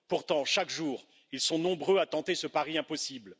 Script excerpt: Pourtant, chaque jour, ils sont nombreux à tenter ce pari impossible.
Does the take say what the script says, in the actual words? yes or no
yes